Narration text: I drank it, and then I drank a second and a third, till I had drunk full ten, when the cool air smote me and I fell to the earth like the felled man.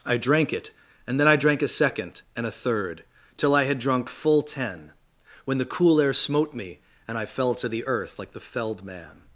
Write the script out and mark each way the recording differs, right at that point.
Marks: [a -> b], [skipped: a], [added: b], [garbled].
I drank it, and then I drank a second and a third, till I had drunk full ten, when the cool air smote me and I fell to the earth like the felled man.